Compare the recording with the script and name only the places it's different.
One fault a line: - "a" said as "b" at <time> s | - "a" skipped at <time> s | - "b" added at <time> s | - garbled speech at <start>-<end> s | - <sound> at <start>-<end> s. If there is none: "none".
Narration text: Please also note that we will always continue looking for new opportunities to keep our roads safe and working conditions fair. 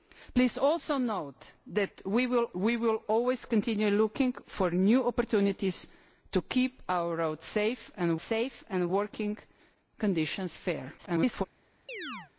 - "we will" added at 2.5 s
- "safe and" added at 8.2 s
- garbled speech at 11.0-11.5 s
- chirp at 11.9-12.3 s